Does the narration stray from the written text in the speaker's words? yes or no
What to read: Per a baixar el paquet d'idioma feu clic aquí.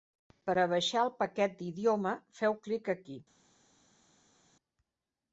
no